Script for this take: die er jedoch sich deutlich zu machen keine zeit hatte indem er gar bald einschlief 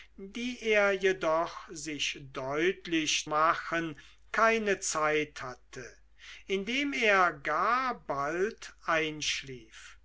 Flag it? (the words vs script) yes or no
yes